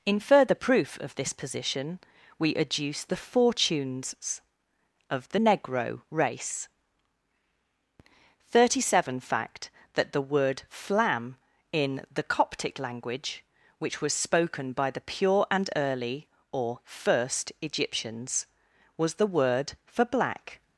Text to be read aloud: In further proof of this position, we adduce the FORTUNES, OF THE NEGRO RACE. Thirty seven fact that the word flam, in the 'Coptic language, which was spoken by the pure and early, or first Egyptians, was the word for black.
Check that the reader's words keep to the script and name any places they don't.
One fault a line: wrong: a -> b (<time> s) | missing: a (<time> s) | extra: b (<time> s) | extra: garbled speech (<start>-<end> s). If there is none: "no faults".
no faults